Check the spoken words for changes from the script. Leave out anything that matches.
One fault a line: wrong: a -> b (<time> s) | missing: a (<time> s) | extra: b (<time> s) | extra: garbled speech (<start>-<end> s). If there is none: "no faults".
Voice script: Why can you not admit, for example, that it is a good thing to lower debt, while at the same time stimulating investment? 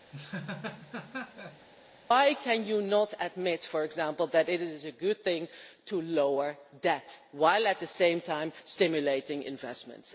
no faults